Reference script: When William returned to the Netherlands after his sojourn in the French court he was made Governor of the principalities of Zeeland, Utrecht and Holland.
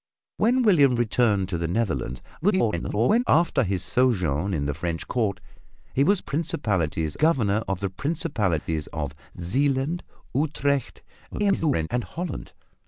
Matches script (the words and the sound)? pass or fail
fail